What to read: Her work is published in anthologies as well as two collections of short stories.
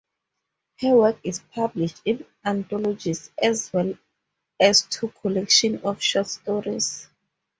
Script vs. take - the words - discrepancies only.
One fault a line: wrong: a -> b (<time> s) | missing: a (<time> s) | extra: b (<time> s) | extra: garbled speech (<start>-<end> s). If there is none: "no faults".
no faults